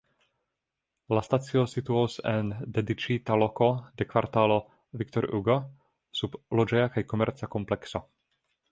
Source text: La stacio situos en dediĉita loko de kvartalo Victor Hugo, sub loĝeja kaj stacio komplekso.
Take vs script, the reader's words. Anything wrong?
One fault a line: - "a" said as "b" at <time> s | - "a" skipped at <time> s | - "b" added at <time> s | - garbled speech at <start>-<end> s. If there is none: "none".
- "stacio" said as "komerca" at 7.1 s